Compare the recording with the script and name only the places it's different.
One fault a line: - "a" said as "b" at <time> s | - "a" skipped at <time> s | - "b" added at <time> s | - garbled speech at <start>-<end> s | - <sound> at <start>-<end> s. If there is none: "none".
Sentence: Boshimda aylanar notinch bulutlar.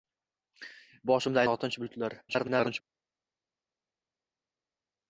- "aylanar" skipped at 1.4 s
- garbled speech at 2.3-2.8 s